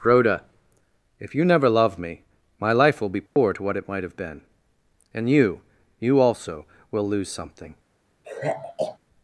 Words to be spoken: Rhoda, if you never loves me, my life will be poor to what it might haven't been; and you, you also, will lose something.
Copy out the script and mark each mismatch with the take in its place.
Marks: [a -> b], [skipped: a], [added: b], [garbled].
Rhoda, if you never [loves -> love] me, my life will be poor to what it might [haven't -> have] been; and you, you also, will lose something.